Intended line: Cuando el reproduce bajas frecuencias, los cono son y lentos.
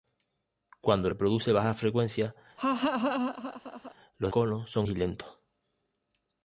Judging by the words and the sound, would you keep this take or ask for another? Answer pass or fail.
fail